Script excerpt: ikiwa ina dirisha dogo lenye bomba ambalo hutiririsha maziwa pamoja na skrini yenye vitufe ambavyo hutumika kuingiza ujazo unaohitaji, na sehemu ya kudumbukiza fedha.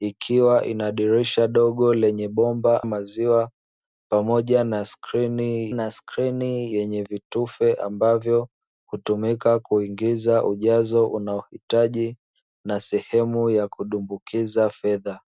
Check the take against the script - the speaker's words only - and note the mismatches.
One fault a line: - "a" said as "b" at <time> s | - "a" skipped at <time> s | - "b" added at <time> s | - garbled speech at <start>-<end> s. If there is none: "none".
- "ambalo hutiririsha maziwa pamoja" said as "maziwa pamoja na skrini" at 2.8 s